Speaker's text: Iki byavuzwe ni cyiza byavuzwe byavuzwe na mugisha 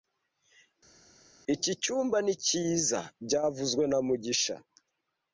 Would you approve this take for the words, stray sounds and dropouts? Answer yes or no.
no